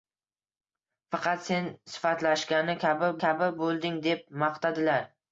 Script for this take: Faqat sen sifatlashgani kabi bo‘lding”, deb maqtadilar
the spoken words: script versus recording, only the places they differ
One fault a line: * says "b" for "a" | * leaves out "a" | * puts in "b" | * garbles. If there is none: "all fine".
* puts in "kabi"